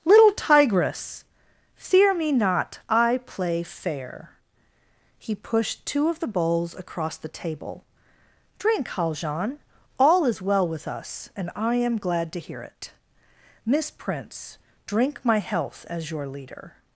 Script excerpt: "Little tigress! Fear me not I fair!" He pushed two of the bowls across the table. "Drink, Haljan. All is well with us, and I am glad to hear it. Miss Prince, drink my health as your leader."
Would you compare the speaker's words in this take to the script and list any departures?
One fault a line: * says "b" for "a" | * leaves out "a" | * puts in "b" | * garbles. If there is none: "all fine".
* puts in "play"